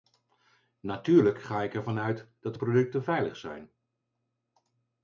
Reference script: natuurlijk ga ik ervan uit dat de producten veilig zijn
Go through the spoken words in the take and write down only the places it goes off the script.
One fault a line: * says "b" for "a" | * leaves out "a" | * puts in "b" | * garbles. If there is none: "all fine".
all fine